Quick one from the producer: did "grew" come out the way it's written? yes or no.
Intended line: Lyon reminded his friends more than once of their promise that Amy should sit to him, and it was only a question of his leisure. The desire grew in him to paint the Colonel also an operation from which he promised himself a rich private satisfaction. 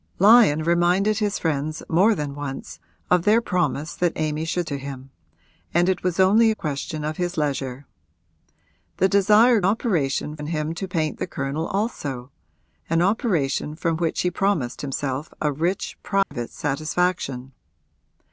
no